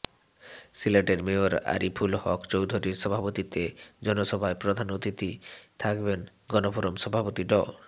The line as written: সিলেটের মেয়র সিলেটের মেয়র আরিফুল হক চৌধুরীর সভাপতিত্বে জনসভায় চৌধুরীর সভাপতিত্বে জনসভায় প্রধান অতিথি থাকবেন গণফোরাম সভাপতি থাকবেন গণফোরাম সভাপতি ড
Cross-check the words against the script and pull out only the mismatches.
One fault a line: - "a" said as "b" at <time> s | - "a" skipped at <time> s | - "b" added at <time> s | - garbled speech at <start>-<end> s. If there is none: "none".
- "সিলেটের মেয়র" skipped at 1.5 s
- "চৌধুরীর সভাপতিত্বে জনসভায়" skipped at 4.6 s
- "থাকবেন গণফোরাম সভাপতি" skipped at 7.4 s